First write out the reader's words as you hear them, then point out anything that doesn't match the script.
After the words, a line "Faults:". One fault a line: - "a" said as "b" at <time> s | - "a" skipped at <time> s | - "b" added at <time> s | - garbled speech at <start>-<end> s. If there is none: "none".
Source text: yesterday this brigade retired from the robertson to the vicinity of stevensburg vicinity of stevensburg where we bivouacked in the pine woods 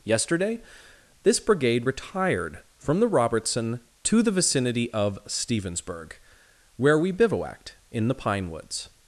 yesterday this brigade retired from the robertson to the vicinity of stevensburg where we bivouacked in the pine woods
Faults:
- "vicinity of stevensburg" skipped at 6.2 s